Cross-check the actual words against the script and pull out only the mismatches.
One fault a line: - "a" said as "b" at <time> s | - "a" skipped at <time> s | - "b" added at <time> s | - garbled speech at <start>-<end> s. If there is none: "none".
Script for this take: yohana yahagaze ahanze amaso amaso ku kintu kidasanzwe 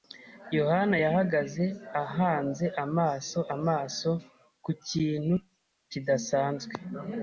none